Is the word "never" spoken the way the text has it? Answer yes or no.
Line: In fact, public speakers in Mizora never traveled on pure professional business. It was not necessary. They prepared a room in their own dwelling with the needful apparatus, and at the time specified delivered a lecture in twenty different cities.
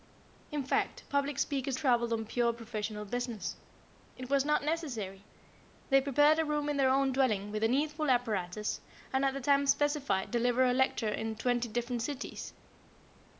no